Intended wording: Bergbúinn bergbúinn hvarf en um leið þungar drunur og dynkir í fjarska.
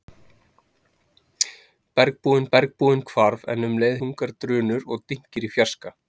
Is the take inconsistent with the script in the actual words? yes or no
no